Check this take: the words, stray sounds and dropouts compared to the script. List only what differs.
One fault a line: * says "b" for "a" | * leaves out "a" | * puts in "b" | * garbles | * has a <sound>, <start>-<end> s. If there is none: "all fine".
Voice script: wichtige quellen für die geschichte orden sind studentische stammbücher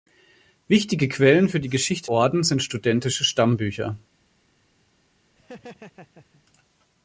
* has a laugh, 5.4-6.4 s